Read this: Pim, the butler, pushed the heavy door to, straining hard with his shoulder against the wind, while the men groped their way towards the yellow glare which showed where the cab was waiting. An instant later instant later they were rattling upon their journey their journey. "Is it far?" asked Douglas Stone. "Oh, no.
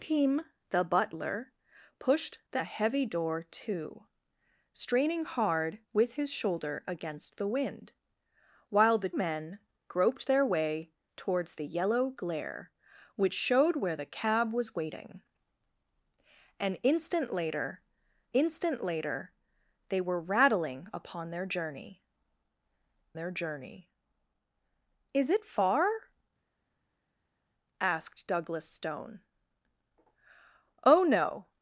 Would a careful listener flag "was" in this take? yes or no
no